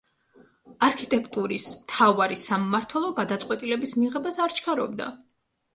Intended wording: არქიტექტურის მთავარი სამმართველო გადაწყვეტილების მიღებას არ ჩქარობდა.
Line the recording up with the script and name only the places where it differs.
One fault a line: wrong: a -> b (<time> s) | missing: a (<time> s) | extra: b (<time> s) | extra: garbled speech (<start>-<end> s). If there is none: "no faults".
no faults